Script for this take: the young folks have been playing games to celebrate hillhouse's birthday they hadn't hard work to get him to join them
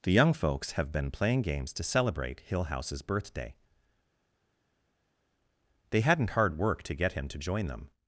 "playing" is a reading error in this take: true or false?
false